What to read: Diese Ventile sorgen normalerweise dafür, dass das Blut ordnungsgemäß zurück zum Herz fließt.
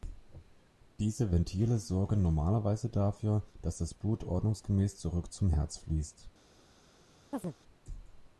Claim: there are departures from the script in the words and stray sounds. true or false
true